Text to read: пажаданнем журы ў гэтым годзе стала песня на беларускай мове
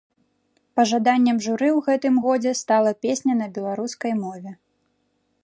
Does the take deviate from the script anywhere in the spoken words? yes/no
no